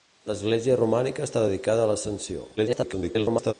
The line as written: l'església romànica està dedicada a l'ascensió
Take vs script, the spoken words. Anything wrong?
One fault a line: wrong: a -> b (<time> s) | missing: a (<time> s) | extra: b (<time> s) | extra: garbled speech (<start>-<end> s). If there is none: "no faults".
extra: garbled speech (2.6-3.5 s)